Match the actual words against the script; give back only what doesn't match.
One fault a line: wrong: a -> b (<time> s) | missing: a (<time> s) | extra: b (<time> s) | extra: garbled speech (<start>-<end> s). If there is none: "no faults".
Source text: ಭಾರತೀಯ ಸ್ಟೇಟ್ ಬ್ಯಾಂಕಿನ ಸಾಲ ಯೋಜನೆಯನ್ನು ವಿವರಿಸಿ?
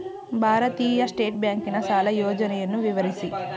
no faults